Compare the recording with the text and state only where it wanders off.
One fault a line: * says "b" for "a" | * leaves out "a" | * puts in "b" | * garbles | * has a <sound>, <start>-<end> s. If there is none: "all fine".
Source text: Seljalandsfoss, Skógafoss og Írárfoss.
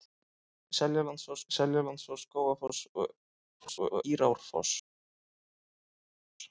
* puts in "seljalandsfoss"
* garbles